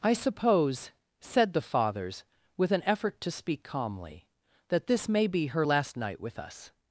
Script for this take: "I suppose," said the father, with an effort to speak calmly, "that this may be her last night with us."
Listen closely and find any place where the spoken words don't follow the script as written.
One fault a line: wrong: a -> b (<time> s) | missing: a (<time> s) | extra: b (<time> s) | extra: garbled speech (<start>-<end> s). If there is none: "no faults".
wrong: father -> fathers (1.6 s)